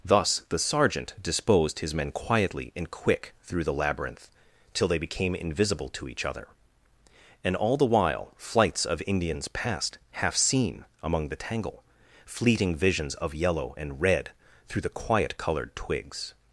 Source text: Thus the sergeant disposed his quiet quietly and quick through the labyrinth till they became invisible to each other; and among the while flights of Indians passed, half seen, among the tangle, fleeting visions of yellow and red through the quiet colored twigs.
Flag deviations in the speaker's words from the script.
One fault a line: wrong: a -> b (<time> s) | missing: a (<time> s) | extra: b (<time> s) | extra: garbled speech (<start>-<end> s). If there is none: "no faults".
wrong: quiet -> men (1.9 s)
wrong: among -> all (7.5 s)